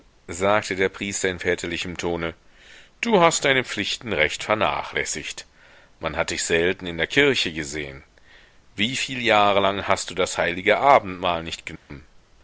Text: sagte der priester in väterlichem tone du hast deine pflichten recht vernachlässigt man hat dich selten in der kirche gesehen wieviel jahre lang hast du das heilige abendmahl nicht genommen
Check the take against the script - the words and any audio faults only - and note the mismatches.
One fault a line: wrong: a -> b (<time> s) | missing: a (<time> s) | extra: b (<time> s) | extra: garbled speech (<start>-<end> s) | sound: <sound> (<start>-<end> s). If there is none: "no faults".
sound: dropout (11.8-11.9 s)